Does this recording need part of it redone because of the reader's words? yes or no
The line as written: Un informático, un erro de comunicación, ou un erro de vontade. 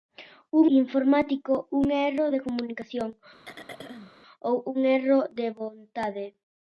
no